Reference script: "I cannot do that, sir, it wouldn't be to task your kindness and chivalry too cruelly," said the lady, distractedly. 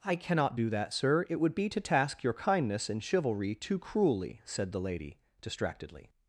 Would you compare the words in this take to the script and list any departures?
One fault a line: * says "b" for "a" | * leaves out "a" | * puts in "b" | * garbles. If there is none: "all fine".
* says "would" for "wouldn't"